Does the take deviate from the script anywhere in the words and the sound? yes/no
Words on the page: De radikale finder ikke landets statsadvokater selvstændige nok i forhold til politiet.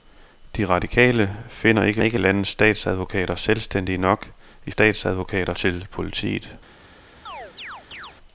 yes